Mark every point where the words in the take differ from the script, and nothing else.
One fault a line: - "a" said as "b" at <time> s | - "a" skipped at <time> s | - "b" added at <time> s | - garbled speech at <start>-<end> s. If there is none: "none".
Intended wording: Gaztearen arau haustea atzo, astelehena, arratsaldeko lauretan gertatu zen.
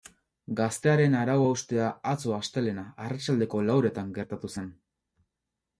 none